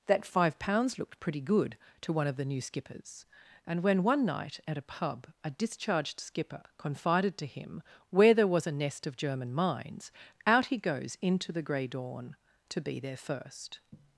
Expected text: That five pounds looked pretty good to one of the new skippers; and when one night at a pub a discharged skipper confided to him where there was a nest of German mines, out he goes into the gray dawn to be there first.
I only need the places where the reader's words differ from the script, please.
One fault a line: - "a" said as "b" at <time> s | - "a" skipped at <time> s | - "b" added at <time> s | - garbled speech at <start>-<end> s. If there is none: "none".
none